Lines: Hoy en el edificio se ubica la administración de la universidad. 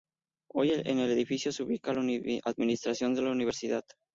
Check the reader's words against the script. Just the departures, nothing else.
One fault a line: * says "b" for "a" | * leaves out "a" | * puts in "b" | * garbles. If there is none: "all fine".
all fine